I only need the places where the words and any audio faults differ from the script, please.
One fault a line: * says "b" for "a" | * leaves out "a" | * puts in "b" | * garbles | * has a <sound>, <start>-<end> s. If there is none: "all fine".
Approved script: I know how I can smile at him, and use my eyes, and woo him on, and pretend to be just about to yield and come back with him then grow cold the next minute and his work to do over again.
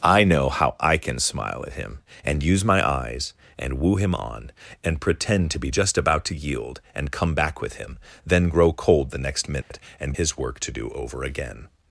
* has a dropout, 9.6-9.7 s